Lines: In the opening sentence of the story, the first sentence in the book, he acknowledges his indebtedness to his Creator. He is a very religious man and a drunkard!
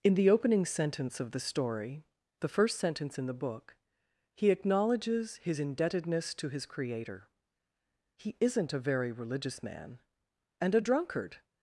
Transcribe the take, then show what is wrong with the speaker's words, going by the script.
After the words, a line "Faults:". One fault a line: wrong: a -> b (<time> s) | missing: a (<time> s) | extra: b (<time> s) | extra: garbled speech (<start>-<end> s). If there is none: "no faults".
In the opening sentence of the story, the first sentence in the book, he acknowledges his indebtedness to his Creator. He isn't a very religious man and a drunkard!
Faults:
wrong: is -> isn't (8.4 s)